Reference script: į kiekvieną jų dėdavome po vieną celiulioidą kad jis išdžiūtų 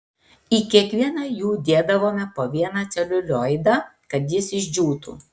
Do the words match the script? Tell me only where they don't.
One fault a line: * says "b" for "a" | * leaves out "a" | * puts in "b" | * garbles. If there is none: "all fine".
all fine